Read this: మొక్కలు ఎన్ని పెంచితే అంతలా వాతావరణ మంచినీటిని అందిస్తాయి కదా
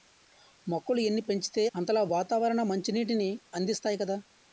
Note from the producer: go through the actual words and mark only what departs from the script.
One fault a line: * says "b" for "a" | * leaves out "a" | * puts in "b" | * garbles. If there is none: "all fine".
all fine